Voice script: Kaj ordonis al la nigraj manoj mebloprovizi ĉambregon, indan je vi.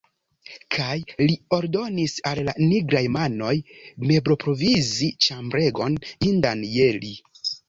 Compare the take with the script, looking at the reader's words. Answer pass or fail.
fail